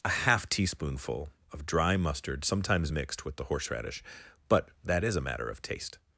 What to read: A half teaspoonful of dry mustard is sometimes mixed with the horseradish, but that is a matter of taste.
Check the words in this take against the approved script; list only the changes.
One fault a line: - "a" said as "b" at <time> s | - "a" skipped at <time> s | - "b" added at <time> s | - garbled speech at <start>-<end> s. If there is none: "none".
- "is" skipped at 2.4 s